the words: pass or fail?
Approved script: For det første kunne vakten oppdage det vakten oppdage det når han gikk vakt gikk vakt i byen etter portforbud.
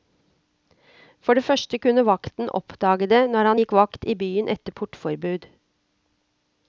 fail